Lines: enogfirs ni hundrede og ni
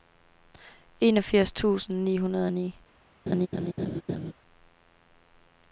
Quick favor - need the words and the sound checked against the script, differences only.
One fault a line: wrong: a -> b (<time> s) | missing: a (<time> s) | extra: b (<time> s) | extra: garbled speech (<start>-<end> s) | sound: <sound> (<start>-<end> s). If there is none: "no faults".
extra: tusind (1.5 s)
sound: laugh (3.3-4.3 s)